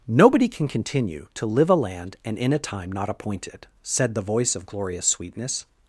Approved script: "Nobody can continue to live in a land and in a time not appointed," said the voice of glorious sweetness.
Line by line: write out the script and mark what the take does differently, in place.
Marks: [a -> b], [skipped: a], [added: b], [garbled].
"Nobody can continue to live [skipped: in] a land and in a time not appointed," said the voice of glorious sweetness.